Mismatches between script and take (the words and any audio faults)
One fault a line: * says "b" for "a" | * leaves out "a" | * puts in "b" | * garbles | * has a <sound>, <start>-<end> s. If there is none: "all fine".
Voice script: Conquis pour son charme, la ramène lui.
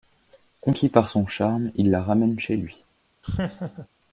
* says "par" for "pour"
* puts in "il"
* puts in "chez"
* has a laugh, 3.2-3.9 s